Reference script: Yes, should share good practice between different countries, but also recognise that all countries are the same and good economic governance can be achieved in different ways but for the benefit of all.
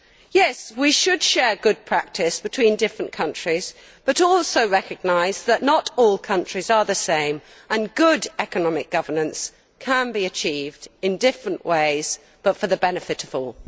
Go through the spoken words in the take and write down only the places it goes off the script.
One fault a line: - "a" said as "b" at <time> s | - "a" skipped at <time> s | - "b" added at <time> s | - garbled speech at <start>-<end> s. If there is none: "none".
- "we" added at 0.8 s
- "not" added at 5.6 s